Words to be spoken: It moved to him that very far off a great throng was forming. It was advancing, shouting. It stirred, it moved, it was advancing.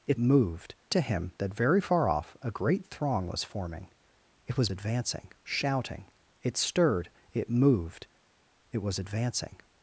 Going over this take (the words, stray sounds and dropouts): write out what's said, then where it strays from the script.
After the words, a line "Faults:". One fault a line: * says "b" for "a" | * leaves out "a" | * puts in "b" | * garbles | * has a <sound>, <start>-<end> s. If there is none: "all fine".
It moved to him that very far off a great throng was forming. It was advancing, shouting. It stirred, it moved, it was advancing.
Faults:
all fine